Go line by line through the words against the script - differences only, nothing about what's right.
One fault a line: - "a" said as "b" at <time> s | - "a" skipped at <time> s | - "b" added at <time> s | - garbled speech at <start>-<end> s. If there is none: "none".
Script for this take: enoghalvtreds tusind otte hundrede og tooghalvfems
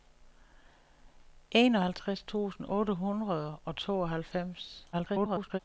- garbled speech at 4.9-5.6 s